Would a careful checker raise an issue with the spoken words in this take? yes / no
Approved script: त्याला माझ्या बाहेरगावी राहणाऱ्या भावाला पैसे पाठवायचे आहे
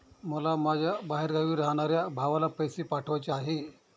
yes